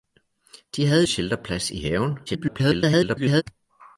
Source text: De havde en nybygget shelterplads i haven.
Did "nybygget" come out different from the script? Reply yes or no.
yes